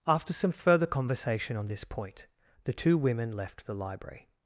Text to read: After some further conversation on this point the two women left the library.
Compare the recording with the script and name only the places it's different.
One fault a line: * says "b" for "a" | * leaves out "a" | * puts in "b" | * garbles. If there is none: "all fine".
all fine